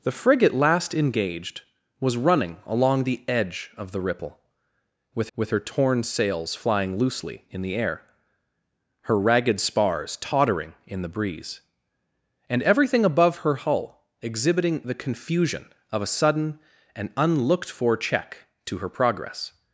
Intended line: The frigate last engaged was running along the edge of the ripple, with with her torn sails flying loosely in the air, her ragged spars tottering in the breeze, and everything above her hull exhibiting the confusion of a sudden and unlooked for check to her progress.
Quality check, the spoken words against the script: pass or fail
pass